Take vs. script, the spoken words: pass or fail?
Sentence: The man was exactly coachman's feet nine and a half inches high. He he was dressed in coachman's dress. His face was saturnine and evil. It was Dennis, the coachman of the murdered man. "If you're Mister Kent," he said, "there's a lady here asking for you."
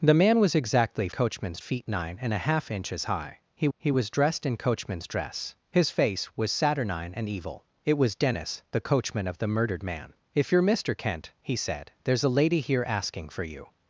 pass